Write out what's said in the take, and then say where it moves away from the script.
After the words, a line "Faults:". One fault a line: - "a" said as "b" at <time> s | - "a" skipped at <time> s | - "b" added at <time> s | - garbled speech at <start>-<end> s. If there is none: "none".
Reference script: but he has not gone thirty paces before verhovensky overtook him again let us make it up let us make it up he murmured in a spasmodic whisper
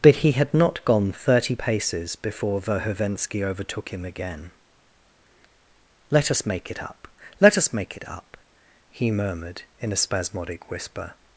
but he had not gone thirty paces before verhovensky overtook him again let us make it up let us make it up he murmured in a spasmodic whisper
Faults:
- "has" said as "had" at 0.3 s